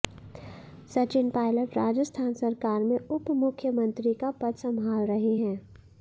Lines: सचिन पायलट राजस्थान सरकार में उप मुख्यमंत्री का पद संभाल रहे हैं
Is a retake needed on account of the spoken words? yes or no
no